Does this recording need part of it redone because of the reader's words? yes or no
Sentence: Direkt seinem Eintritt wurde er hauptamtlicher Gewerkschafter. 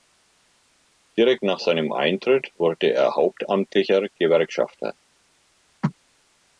yes